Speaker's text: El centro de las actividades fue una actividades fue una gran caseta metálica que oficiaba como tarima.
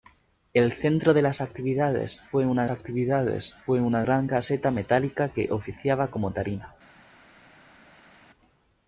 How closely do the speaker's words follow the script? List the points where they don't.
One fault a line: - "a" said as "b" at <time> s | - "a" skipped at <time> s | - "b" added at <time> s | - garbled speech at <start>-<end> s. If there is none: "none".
none